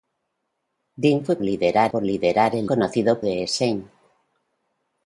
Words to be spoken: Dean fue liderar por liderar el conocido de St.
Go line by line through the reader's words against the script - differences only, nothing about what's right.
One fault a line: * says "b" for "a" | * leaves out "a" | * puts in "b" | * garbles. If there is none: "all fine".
all fine